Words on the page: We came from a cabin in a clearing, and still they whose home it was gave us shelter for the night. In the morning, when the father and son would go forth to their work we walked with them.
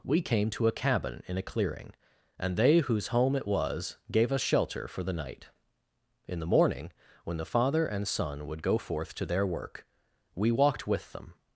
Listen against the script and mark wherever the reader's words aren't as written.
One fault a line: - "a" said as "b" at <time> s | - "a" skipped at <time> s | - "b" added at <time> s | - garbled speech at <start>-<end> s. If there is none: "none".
- "from" said as "to" at 0.5 s
- "still" skipped at 2.6 s